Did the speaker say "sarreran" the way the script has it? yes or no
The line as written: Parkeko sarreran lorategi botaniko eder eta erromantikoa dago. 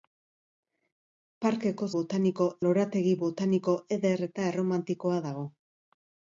no